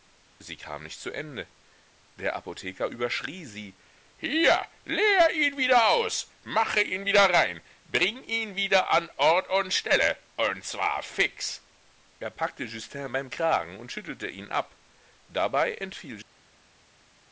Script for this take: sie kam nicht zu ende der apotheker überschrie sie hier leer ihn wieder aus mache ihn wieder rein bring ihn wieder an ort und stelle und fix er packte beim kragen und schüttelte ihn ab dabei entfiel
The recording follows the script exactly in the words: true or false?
false